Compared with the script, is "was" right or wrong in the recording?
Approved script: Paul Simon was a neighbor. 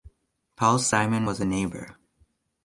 right